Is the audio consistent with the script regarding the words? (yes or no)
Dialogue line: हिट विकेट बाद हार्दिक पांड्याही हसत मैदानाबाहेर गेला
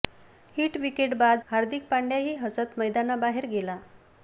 yes